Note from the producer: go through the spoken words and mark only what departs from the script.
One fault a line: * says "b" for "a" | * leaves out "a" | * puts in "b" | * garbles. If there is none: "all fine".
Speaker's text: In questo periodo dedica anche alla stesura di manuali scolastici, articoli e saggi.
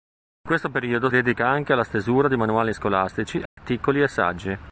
all fine